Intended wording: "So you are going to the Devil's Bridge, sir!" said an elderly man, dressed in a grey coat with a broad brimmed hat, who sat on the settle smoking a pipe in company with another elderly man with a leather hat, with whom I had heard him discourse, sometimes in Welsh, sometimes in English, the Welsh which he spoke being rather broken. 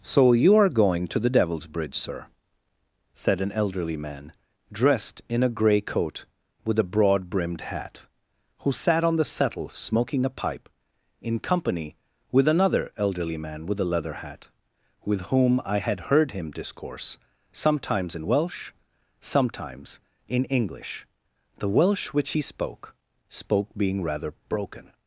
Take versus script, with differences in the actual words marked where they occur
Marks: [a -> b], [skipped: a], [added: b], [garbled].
"So you are going to the Devil's Bridge, sir!" said an elderly man, dressed in a grey coat with a broad brimmed hat, who sat on the settle smoking a pipe in company with another elderly man with a leather hat, with whom I had heard him discourse, sometimes in Welsh, sometimes in English, the Welsh which he spoke [added: spoke] being rather broken.